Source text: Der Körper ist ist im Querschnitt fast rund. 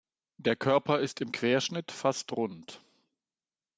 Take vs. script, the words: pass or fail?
fail